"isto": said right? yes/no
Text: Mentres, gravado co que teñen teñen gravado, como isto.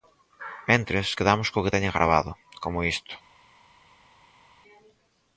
yes